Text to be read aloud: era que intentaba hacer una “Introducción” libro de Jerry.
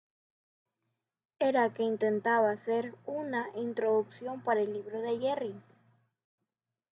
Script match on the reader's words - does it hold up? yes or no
no